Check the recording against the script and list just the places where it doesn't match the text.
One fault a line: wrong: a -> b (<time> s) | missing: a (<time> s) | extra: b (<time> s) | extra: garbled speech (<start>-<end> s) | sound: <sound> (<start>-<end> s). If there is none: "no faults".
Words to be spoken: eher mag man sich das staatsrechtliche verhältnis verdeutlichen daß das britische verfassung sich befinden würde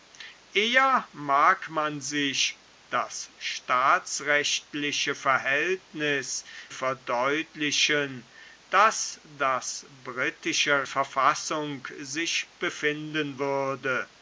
no faults